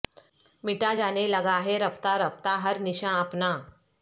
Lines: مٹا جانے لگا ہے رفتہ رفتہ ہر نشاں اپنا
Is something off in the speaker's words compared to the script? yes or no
no